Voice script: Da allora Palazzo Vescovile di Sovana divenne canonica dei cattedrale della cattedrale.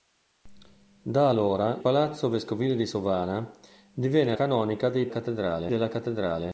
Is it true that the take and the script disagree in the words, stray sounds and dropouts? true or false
false